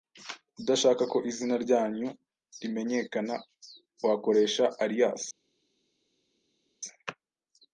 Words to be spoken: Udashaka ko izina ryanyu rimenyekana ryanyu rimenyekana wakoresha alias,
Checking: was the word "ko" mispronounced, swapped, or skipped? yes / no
no